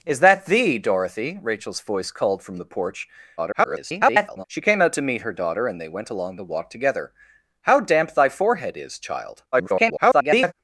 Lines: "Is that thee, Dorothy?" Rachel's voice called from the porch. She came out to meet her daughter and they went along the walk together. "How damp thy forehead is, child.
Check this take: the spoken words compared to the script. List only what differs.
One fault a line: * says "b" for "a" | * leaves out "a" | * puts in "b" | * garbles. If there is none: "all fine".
* garbles
* garbles